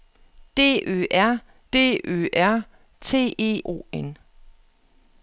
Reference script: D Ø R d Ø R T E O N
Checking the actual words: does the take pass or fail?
pass